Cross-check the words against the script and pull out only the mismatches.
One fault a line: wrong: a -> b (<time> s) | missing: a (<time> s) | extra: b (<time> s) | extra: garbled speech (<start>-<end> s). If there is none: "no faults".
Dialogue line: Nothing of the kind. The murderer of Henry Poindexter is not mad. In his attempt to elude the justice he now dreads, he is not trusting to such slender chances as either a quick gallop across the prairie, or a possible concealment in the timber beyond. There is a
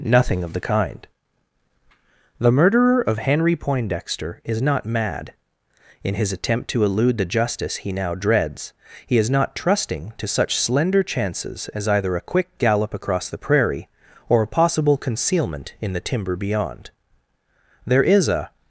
no faults